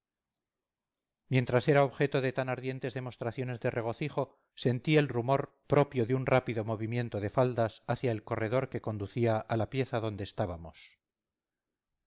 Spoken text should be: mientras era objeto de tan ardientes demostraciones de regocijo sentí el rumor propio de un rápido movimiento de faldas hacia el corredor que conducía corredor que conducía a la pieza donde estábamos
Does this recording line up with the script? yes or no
no